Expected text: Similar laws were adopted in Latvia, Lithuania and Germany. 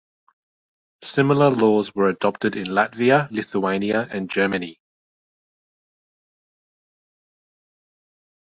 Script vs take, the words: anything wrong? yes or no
no